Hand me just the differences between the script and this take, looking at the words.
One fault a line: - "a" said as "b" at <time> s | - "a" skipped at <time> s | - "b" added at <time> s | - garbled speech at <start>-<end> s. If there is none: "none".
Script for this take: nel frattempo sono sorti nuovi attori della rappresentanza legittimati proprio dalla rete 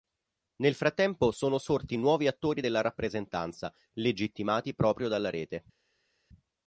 none